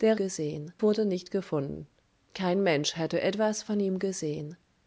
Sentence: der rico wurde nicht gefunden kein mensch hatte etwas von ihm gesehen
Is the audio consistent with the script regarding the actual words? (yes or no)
no